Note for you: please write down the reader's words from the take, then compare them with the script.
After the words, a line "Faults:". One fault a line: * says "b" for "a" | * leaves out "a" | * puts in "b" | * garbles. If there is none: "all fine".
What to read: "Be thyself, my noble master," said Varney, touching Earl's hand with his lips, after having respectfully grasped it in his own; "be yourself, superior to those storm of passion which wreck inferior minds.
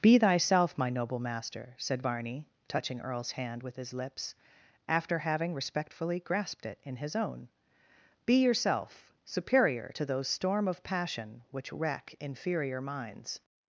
"Be thyself, my noble master," said Varney, touching Earl's hand with his lips, after having respectfully grasped it in his own; "be yourself, superior to those storm of passion which wreck inferior minds.
Faults:
all fine